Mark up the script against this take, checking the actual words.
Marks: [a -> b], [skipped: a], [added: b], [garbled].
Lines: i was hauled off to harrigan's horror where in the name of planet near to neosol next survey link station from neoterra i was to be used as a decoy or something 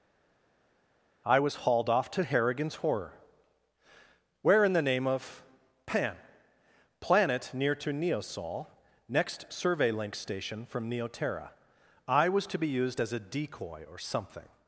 i was hauled off to harrigan's horror where in the name of [added: pan] planet near to neosol next survey link station from neoterra i was to be used as a decoy or something